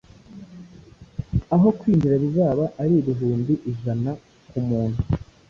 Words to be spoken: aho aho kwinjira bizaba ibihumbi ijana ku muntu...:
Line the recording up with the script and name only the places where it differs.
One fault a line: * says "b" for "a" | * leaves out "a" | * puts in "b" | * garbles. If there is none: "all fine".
* leaves out "aho"
* puts in "ari"